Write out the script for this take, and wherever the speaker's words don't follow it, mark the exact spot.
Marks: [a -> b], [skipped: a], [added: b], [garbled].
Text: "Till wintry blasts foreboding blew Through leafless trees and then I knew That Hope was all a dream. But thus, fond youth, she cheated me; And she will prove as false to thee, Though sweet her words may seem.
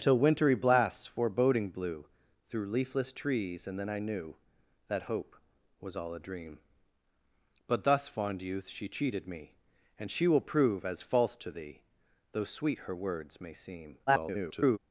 "Till wintry blasts foreboding blew Through leafless trees and then I knew That Hope was all a dream. But thus, fond youth, she cheated me; And she will prove as false to thee, Though sweet her words may seem. [garbled]